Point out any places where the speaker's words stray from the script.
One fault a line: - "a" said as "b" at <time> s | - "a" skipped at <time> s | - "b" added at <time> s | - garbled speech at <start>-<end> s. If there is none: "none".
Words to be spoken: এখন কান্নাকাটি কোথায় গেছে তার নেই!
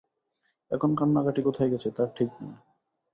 - "ঠিক" added at 2.2 s